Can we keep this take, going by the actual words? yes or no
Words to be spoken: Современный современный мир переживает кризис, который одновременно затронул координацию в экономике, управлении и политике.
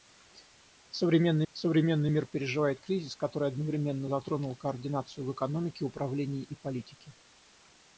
yes